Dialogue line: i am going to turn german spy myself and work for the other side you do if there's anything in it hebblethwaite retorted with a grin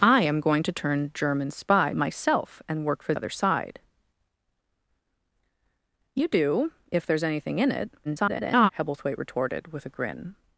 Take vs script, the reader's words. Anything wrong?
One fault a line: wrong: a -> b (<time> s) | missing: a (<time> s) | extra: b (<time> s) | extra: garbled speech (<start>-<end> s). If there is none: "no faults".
missing: the (3.1 s)
extra: garbled speech (8.0-8.7 s)